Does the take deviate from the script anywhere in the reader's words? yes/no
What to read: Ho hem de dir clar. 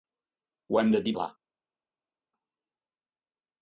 no